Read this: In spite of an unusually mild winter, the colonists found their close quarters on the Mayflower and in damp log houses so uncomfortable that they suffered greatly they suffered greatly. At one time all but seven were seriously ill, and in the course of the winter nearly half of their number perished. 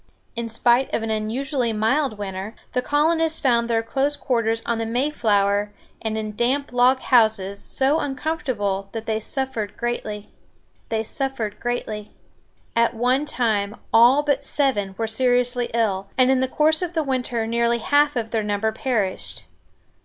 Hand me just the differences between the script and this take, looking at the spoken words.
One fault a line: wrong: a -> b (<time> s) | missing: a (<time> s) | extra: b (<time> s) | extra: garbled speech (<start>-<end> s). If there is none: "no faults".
no faults